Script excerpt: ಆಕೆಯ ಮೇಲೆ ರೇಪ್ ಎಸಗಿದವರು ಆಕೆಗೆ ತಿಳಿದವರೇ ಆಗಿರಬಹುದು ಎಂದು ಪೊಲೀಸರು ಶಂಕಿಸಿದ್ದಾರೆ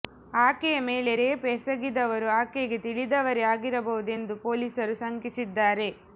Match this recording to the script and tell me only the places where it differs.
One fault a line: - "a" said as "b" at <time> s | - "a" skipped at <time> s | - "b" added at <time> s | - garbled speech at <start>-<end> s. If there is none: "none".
none